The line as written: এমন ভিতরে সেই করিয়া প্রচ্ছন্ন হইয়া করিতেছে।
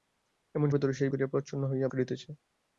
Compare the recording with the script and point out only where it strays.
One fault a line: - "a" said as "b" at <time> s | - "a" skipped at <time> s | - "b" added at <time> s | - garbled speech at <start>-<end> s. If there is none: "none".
none